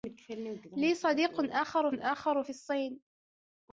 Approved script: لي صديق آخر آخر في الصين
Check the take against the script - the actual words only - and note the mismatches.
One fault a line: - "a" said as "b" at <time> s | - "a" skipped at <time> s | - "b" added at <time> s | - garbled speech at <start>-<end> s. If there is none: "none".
none